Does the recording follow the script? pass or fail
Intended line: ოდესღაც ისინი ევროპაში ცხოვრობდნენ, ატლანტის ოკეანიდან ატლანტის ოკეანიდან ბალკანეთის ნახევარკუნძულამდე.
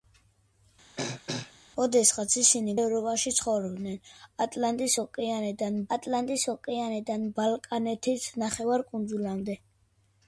pass